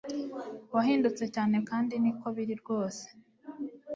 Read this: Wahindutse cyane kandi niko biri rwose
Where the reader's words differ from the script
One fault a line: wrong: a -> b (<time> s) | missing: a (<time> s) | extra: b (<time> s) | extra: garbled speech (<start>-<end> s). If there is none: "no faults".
no faults